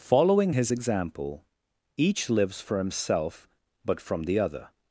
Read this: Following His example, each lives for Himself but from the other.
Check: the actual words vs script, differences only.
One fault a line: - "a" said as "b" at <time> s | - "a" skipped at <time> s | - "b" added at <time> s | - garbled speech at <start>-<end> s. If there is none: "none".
none